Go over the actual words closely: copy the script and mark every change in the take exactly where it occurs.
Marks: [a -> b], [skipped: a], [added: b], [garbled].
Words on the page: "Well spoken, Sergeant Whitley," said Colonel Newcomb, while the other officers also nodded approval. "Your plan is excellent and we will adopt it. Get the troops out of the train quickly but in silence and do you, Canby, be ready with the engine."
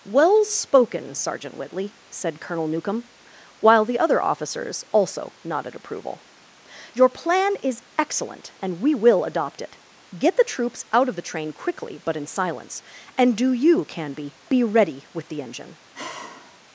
"Well spoken, Sergeant Whitley," said Colonel Newcomb, while the other officers also nodded approval. "Your plan is excellent and we will adopt it. Get the troops out of the train quickly but in silence and do you, Canby, be ready with the engine."